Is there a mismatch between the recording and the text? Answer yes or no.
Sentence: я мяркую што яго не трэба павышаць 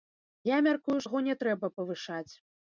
yes